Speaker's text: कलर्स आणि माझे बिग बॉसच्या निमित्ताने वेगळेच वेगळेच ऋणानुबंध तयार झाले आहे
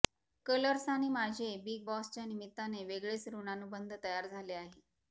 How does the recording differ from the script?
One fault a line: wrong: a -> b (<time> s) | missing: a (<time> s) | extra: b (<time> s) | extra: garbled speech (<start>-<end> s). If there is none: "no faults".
missing: वेगळेच (3.3 s)